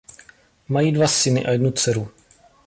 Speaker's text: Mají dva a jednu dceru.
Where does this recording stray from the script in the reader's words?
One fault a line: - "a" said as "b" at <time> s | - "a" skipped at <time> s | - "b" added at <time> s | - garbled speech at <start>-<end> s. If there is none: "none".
- "syny" added at 1.1 s